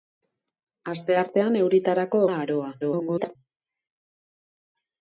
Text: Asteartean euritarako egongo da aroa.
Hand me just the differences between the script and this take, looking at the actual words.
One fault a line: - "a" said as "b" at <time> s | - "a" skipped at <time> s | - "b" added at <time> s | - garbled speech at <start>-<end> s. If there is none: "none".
- "egongo" skipped at 2.2 s
- garbled speech at 2.8-3.4 s